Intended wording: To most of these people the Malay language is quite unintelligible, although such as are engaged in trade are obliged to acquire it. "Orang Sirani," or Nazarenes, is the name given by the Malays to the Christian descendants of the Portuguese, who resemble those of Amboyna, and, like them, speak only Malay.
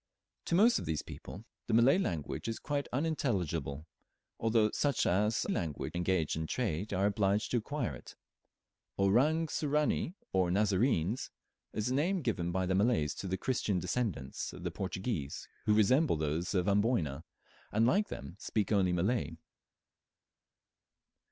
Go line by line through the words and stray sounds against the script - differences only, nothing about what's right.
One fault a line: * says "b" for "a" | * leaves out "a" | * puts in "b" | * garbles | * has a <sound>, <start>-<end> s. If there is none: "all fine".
* says "language" for "are"